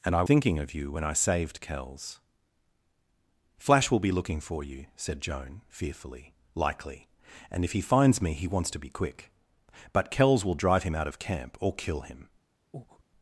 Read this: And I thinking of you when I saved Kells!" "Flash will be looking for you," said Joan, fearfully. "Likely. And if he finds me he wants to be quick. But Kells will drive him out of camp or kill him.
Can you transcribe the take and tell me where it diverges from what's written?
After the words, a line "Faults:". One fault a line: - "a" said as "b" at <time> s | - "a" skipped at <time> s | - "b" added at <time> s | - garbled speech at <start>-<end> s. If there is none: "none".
And I thinking of you when I saved Kells!" "Flash will be looking for you," said Joan, fearfully. "Likely. And if he finds me he wants to be quick. But Kells will drive him out of camp or kill him.
Faults:
none